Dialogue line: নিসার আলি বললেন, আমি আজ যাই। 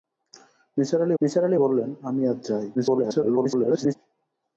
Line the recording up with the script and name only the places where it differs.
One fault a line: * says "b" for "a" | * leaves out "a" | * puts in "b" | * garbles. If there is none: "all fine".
* puts in "নিসার আলি"
* garbles